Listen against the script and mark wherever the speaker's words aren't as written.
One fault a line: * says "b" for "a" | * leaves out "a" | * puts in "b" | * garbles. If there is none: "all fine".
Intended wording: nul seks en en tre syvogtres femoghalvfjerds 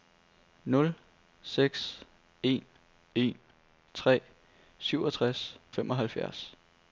all fine